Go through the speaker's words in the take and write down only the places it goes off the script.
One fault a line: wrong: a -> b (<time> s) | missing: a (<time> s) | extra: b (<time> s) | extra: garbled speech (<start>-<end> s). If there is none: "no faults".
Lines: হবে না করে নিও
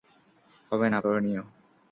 no faults